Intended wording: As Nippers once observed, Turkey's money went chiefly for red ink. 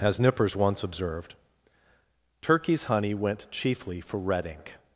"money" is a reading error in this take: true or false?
true